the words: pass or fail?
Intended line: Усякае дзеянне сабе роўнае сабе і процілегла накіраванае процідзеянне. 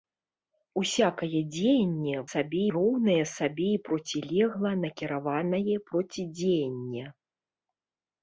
pass